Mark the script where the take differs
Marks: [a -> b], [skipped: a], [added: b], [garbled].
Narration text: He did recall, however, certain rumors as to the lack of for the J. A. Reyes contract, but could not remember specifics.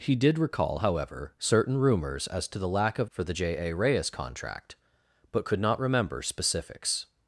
He did recall, however, certain rumors as to the lack of for the J. A. Reyes contract, but could not remember specifics.